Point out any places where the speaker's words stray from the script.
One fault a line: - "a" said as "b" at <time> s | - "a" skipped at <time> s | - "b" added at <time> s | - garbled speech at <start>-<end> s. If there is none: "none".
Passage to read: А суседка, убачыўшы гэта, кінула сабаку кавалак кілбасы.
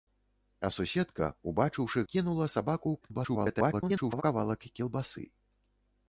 - "гэта" skipped at 2.0 s
- garbled speech at 3.0-4.2 s